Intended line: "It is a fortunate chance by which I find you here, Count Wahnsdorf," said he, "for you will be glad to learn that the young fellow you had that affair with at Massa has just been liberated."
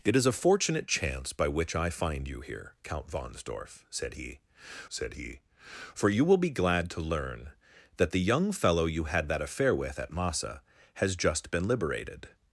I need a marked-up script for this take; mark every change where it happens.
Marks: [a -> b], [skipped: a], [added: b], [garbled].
"It is a fortunate chance by which I find you here, Count Wahnsdorf," said he, [added: said he] "for you will be glad to learn that the young fellow you had that affair with at Massa has just been liberated."